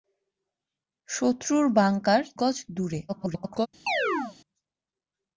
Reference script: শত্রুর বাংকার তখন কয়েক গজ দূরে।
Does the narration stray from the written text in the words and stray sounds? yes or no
yes